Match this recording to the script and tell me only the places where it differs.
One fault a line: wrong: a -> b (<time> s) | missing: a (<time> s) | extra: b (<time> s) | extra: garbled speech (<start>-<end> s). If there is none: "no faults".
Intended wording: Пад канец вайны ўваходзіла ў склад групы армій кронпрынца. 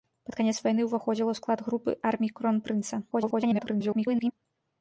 extra: garbled speech (3.1-4.3 s)